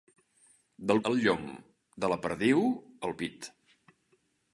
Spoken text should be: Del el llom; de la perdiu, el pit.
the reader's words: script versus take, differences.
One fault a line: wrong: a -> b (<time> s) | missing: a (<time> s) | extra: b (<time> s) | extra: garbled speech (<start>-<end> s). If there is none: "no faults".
no faults